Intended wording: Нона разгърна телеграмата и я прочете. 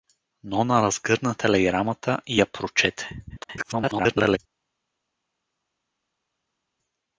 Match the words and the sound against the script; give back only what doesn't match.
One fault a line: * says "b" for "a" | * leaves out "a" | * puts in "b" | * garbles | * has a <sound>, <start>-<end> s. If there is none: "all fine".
* garbles